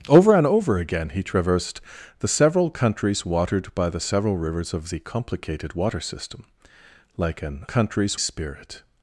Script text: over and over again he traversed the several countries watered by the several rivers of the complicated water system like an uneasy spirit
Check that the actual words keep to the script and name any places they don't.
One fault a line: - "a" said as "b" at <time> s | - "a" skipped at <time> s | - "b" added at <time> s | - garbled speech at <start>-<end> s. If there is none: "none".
- "uneasy" said as "countries" at 7.6 s